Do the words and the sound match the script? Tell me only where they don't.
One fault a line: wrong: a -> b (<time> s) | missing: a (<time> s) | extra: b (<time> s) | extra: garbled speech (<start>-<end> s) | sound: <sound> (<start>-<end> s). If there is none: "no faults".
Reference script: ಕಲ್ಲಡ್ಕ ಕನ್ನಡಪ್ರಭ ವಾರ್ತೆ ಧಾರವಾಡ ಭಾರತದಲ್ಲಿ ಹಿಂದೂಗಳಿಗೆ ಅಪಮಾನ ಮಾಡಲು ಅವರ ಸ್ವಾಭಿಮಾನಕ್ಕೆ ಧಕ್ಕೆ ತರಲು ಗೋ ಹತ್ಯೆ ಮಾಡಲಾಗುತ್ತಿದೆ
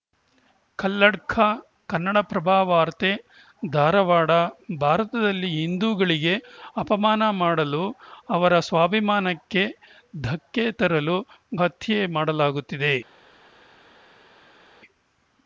missing: ಗೋ (11.2 s)